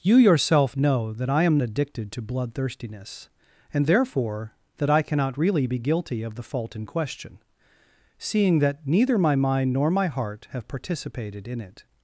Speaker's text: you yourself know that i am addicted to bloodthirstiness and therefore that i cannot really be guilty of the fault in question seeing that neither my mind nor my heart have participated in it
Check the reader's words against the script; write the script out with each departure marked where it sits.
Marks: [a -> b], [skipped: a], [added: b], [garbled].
you yourself know that i am addicted to bloodthirstiness and therefore that i cannot really be guilty of the fault in question seeing that neither my mind nor my heart have participated in it